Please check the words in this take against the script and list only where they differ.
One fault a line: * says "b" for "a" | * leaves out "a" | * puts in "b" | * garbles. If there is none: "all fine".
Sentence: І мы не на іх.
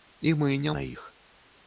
all fine